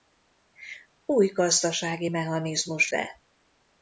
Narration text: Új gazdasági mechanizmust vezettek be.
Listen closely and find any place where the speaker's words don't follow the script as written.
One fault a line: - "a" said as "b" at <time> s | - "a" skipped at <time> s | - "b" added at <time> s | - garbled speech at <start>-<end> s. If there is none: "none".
- "vezettek" skipped at 2.9 s